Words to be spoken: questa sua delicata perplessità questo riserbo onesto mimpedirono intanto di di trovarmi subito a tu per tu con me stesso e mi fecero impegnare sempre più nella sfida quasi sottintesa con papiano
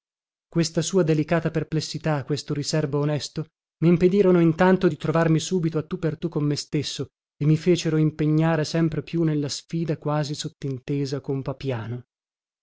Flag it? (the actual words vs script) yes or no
yes